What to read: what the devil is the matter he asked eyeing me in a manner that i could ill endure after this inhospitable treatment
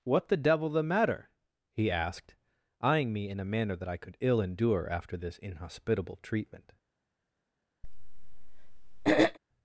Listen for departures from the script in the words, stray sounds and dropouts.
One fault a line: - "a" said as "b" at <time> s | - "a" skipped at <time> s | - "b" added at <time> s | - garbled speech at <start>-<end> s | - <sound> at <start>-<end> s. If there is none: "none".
- "is" skipped at 0.7 s
- throat clearing at 7.8-9.4 s